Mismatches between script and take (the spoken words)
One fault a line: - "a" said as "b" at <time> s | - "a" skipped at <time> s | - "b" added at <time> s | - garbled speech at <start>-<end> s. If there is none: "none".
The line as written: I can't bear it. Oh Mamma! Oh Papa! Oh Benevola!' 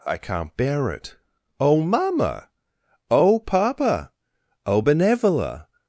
none